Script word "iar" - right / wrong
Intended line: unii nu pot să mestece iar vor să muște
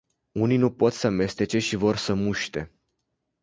wrong